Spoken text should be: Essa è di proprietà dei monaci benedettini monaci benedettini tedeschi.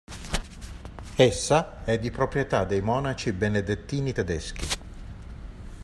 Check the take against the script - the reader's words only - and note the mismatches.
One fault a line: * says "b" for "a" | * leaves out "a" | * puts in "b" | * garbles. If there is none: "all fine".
* leaves out "monaci benedettini"